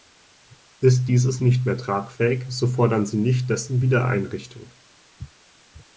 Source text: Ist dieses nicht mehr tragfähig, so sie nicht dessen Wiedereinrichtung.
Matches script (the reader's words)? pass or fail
fail